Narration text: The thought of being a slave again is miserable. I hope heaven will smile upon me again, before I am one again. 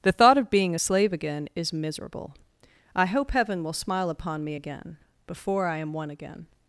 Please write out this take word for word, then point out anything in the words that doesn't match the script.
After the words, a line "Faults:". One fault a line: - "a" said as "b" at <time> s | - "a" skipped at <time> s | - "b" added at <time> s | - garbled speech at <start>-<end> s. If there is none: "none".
The thought of being a slave again is miserable. I hope heaven will smile upon me again, before I am one again.
Faults:
none